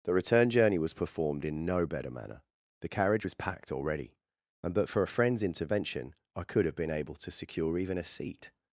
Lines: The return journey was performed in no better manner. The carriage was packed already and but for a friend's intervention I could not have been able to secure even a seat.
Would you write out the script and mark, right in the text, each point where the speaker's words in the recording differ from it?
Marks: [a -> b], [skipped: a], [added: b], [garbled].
The return journey was performed in no better manner. The carriage was packed already and but for a friend's intervention I could [skipped: not] have been able to secure even a seat.